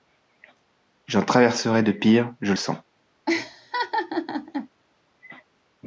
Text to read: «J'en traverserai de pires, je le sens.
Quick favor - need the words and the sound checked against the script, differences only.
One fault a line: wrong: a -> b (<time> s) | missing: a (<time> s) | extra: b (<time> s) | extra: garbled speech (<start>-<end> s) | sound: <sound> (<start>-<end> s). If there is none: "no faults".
sound: laugh (3.3-4.7 s)